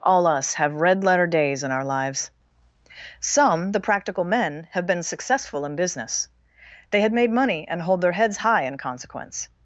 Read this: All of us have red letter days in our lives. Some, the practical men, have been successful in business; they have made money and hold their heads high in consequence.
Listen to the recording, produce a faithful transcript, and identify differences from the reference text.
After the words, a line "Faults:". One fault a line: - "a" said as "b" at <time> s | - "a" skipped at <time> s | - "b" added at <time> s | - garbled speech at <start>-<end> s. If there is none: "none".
All us have red letter days in our lives. Some, the practical men, have been successful in business; they had made money and hold their heads high in consequence.
Faults:
- "of" skipped at 0.2 s
- "have" said as "had" at 7.0 s